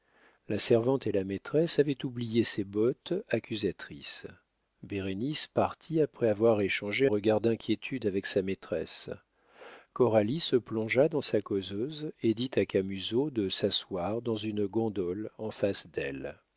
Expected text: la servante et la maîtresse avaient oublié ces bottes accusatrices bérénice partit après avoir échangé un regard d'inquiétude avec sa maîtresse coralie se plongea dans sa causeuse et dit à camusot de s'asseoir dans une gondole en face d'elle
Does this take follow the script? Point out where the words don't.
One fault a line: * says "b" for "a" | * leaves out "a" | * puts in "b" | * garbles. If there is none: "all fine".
* leaves out "un"